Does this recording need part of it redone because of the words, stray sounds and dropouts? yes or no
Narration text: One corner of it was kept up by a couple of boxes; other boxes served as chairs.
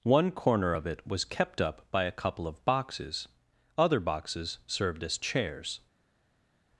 no